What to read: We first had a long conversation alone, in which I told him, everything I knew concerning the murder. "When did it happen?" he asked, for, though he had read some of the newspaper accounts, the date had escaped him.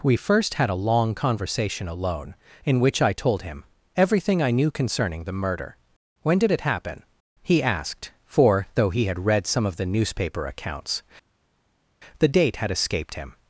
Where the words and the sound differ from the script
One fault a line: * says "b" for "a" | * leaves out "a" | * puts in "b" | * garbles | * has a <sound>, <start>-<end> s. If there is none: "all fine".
all fine